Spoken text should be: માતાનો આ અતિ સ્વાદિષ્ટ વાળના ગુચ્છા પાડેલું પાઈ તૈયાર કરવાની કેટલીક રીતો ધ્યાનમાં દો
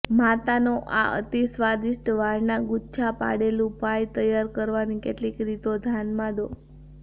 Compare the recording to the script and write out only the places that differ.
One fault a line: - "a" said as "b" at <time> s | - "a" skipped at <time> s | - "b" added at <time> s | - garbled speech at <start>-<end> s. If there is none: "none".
none